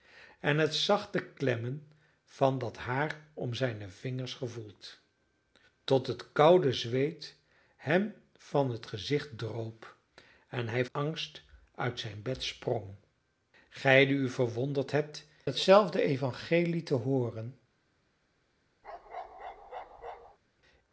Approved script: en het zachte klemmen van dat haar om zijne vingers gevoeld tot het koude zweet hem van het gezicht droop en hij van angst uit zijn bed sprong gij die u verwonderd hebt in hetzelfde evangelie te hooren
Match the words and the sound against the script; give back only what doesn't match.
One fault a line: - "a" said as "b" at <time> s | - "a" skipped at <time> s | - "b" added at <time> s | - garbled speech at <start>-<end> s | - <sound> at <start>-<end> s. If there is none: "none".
- "van" skipped at 10.8 s
- "in" skipped at 15.3 s
- bark at 18.8-20.4 s